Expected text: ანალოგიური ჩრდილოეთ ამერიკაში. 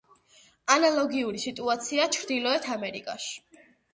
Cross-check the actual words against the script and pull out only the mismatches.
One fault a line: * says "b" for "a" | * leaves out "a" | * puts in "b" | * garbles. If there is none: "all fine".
* puts in "სიტუაციაა"